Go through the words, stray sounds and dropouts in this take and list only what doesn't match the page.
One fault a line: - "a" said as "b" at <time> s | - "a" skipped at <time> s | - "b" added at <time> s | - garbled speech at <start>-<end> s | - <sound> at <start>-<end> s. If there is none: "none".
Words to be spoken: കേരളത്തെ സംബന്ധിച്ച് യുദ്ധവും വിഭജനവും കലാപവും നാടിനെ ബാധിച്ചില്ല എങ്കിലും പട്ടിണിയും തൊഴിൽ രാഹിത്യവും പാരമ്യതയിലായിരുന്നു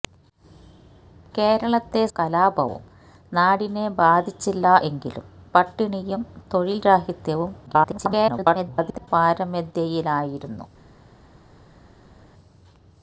- "സംബന്ധിച്ച് യുദ്ധവും വിഭജനവും" skipped at 2.0 s
- garbled speech at 7.7-9.1 s